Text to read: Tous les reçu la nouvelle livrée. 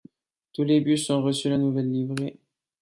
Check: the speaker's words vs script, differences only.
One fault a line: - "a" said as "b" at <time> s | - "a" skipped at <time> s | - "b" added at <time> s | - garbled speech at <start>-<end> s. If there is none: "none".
- "bus ont" added at 0.8 s